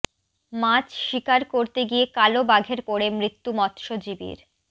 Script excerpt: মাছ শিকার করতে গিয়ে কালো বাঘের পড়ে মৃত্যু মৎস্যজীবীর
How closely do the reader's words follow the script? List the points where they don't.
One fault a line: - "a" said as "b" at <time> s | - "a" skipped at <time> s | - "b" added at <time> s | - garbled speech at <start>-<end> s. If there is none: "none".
none